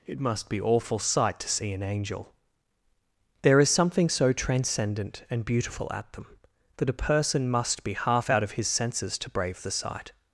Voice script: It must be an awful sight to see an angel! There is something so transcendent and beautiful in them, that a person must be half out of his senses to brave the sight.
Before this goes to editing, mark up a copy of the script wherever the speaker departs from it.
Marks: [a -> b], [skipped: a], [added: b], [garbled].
It must be [skipped: an] awful sight to see an angel! There is something so transcendent and beautiful [in -> at] them, that a person must be half out of his senses to brave the sight.